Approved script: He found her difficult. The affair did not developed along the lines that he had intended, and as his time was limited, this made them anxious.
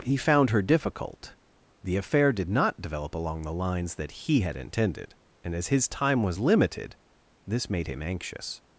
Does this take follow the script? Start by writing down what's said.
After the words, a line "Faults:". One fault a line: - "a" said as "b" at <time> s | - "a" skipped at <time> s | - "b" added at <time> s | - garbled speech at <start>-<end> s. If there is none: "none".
He found her difficult. The affair did not develop along the lines that he had intended, and as his time was limited, this made him anxious.
Faults:
- "developed" said as "develop" at 2.8 s
- "them" said as "him" at 7.9 s